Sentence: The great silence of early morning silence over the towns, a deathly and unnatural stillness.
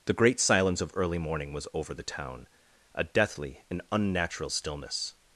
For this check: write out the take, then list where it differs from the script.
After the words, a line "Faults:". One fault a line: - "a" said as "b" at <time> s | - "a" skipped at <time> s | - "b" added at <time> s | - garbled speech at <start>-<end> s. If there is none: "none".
The great silence of early morning was over the town, a deathly and unnatural stillness.
Faults:
- "silence" said as "was" at 1.5 s
- "towns" said as "town" at 2.0 s